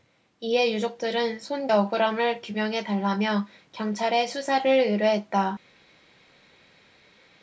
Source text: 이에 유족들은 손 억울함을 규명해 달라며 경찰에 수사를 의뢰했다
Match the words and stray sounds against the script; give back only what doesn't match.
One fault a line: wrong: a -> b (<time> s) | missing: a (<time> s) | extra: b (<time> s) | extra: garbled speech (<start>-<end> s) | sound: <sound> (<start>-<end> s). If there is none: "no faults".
no faults